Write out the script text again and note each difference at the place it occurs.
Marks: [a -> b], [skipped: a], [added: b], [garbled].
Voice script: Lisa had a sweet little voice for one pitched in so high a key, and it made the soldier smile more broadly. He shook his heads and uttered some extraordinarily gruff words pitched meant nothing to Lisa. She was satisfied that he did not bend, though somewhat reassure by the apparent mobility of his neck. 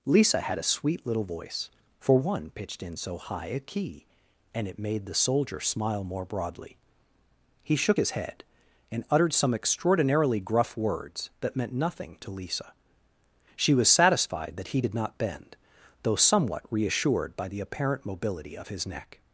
Lisa had a sweet little voice for one pitched in so high a key, and it made the soldier smile more broadly. He shook his [heads -> head] and uttered some extraordinarily gruff words [pitched -> that] meant nothing to Lisa. She was satisfied that he did not bend, though somewhat [reassure -> reassured] by the apparent mobility of his neck.